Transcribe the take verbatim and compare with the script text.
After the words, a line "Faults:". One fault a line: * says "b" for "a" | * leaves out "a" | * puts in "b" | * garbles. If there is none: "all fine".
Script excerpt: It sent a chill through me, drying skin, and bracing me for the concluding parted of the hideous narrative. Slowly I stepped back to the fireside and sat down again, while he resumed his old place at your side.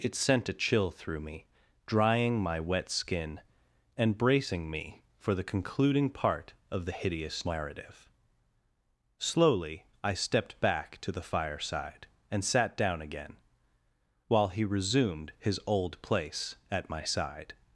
It sent a chill through me, drying my wet skin, and bracing me for the concluding part of the hideous narrative. Slowly I stepped back to the fireside and sat down again, while he resumed his old place at my side.
Faults:
* puts in "my wet"
* says "part" for "parted"
* says "my" for "your"